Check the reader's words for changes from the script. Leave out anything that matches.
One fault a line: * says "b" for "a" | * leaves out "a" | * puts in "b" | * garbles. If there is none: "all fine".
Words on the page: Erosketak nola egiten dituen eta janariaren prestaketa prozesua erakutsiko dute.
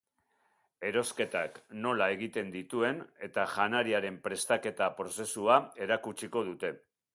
all fine